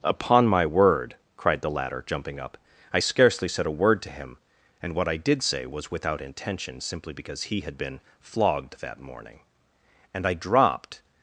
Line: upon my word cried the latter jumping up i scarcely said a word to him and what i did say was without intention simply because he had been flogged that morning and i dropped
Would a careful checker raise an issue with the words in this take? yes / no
no